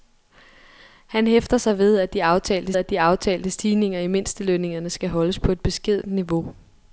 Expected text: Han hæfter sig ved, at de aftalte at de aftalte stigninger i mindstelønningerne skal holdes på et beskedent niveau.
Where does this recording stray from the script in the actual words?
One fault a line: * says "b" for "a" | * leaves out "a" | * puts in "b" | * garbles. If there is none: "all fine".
all fine